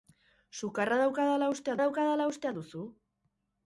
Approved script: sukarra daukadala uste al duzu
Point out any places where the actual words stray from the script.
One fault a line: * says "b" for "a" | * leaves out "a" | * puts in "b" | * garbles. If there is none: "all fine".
* puts in "daukadala uste"